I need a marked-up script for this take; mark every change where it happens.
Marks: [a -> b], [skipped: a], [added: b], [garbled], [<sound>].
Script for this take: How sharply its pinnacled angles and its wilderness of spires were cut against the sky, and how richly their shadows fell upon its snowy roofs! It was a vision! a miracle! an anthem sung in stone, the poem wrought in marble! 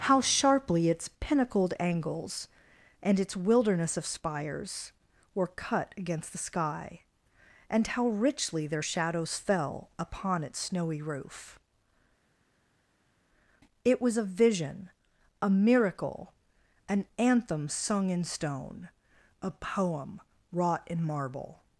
How sharply its pinnacled angles and its wilderness of spires were cut against the sky, and how richly their shadows fell upon its snowy [roofs! -> roof] It was a vision! a miracle! an anthem sung in stone, [the -> a] poem wrought in marble!